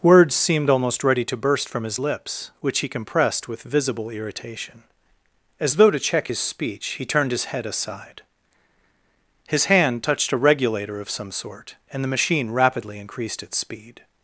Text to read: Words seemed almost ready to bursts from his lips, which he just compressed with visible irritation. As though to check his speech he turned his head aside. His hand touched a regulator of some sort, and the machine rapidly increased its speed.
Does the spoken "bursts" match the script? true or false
false